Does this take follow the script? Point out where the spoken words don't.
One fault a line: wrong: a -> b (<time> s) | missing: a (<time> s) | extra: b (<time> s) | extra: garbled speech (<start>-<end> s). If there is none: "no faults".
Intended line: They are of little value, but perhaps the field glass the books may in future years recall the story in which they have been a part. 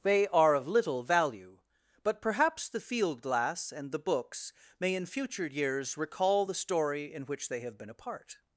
extra: and (3.7 s)